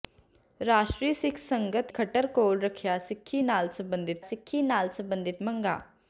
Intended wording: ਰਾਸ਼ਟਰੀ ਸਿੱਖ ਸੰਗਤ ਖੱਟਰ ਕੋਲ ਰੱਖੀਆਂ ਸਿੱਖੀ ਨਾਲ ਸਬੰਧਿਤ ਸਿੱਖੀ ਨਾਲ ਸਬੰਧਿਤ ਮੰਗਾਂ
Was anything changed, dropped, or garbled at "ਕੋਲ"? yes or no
no